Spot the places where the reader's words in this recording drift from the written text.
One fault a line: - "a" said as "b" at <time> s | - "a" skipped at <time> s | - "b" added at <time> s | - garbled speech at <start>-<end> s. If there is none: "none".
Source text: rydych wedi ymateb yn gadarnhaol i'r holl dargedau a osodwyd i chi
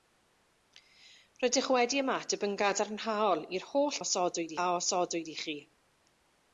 - "dargedau" said as "osodwyd" at 4.0 s